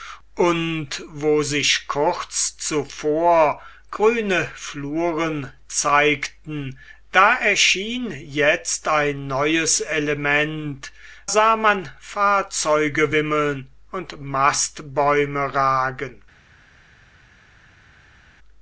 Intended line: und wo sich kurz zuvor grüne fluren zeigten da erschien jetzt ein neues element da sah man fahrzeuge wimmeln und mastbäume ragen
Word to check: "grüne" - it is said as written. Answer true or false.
true